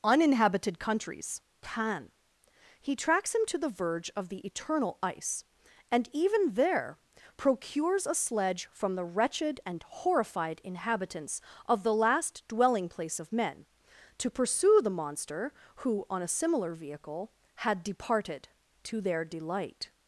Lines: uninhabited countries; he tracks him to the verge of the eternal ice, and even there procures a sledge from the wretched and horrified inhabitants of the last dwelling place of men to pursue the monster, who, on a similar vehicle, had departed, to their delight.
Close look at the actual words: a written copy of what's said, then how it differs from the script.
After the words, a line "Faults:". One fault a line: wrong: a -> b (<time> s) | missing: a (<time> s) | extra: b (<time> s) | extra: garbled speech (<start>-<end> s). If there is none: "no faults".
uninhabited countries; pan he tracks him to the verge of the eternal ice, and even there procures a sledge from the wretched and horrified inhabitants of the last dwelling place of men to pursue the monster, who, on a similar vehicle, had departed, to their delight.
Faults:
extra: pan (1.6 s)